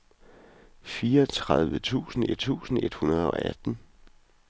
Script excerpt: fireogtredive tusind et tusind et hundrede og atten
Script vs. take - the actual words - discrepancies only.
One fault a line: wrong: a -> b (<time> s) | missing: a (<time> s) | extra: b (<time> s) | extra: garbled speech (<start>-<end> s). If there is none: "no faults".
no faults